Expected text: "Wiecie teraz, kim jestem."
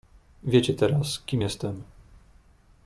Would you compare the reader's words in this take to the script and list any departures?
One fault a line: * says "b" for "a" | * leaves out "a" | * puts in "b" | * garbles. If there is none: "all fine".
all fine